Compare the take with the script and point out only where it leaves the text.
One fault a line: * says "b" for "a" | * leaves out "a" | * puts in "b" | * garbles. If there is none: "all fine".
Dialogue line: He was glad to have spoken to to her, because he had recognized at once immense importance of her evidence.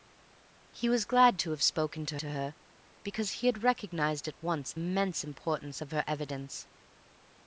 all fine